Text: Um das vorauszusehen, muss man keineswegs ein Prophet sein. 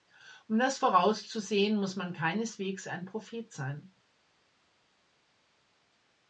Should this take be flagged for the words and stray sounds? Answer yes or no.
no